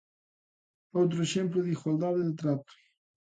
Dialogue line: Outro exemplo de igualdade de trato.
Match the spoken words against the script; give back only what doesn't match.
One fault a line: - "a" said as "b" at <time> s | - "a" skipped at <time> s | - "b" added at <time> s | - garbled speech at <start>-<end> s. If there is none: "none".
none